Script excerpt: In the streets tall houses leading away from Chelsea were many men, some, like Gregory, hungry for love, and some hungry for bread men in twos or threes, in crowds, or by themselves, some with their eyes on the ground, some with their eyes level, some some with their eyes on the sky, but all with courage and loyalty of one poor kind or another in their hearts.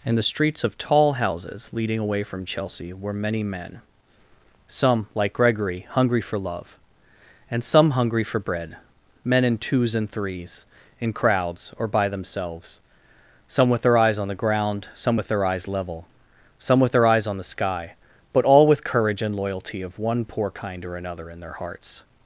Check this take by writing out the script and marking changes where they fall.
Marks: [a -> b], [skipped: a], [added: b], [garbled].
In the streets [added: of] tall houses leading away from Chelsea were many men, some, like Gregory, hungry for love, and some hungry for bread men in twos [or -> and] threes, in crowds, or by themselves, some with their eyes on the ground, some with their eyes level, some [skipped: some] with their eyes on the sky, but all with courage and loyalty of one poor kind or another in their hearts.